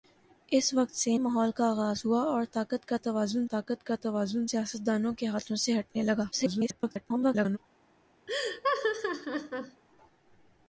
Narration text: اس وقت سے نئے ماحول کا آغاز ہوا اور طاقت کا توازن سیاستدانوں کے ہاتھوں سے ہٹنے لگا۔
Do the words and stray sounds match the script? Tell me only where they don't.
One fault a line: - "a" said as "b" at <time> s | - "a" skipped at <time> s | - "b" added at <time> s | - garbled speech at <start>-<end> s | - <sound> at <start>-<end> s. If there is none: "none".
- "نئے" skipped at 1.2 s
- "طاقت کا توازن" added at 3.5 s
- garbled speech at 6.3-7.6 s
- laugh at 8.3-9.8 s